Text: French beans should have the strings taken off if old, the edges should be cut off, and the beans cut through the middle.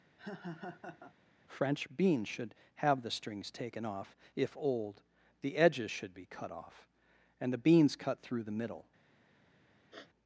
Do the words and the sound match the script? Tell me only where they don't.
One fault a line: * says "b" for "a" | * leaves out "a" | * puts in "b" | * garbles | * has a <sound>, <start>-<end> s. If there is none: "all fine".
* has a laugh, 0.2-1.1 s
* has a sniff, 9.9-10.1 s